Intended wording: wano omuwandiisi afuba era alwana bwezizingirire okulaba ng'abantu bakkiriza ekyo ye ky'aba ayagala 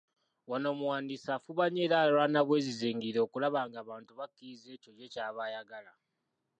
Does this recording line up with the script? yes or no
no